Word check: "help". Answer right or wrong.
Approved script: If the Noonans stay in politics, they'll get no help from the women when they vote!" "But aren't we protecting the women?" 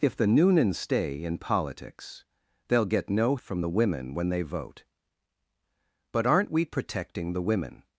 wrong